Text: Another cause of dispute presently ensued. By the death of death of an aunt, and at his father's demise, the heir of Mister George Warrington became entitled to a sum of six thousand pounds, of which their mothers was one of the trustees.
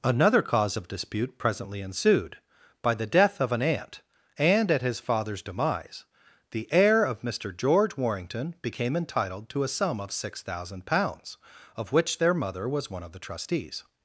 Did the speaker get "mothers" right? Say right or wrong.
wrong